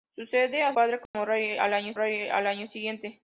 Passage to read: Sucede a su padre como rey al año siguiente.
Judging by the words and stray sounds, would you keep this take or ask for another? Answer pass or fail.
fail